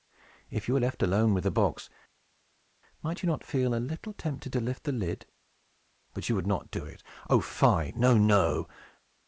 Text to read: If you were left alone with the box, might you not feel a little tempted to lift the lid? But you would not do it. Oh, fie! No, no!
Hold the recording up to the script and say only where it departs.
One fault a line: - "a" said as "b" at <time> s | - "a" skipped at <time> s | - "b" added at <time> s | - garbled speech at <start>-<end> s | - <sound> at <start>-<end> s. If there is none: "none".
none